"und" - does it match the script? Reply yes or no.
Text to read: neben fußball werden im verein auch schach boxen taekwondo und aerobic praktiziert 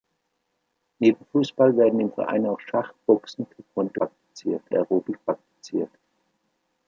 no